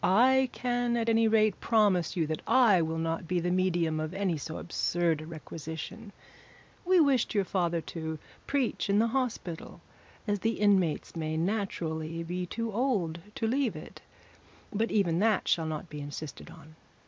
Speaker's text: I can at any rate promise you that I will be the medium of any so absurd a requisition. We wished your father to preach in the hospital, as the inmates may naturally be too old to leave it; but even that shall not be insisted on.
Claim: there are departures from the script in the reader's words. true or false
true